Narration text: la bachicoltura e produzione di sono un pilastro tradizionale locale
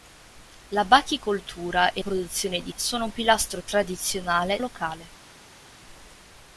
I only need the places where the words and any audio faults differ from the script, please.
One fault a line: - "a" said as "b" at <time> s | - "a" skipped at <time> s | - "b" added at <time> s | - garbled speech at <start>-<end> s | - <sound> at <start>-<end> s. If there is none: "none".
none